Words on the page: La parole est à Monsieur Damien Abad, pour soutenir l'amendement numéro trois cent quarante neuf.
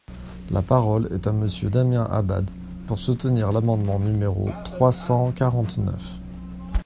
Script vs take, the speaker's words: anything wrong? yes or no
no